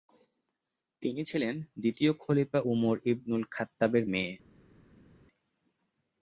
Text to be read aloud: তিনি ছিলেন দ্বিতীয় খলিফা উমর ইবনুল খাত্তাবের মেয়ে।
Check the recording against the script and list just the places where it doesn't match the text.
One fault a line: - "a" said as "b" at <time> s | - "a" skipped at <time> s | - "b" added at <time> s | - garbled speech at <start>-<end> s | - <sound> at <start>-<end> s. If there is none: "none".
none